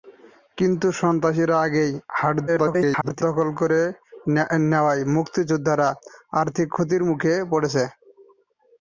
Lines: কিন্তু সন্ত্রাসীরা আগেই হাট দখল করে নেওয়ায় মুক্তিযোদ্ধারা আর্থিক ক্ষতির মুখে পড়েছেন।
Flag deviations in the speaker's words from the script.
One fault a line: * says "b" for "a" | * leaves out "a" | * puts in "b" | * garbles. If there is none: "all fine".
* garbles